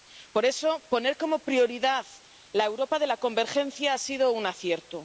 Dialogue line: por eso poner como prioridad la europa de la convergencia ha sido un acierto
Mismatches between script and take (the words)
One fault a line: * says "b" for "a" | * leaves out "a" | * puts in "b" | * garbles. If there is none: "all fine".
all fine